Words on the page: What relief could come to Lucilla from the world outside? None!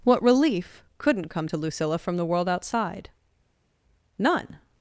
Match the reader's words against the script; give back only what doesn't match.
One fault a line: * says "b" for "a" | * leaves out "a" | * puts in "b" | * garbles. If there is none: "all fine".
* says "couldn't" for "could"